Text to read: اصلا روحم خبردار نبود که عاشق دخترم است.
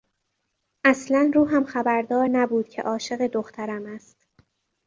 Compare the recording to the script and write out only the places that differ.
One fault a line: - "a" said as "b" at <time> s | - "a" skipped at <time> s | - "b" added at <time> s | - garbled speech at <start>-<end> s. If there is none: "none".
none